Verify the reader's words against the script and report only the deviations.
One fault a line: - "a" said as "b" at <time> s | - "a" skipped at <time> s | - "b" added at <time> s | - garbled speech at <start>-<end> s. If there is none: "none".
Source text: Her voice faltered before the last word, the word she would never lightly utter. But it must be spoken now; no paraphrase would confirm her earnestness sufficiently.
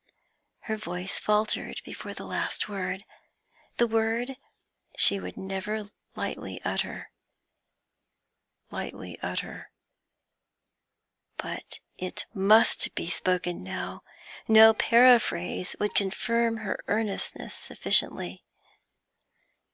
- "lightly utter" added at 8.7 s